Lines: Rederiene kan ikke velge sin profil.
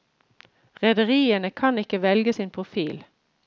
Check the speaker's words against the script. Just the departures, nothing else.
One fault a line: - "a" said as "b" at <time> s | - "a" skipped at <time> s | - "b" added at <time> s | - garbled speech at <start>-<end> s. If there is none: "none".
none